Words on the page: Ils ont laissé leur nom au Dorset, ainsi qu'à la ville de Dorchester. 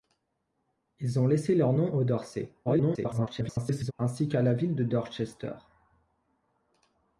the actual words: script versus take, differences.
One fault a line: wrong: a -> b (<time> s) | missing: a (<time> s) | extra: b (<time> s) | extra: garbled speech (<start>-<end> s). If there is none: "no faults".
extra: garbled speech (2.7-3.9 s)